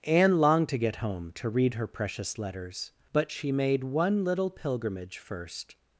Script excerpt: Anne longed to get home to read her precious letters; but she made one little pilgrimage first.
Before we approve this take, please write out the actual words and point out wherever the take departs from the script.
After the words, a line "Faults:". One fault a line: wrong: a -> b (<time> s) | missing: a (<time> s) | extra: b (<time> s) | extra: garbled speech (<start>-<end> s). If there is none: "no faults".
Anne longed to get home to read her precious letters; but she made one little pilgrimage first.
Faults:
no faults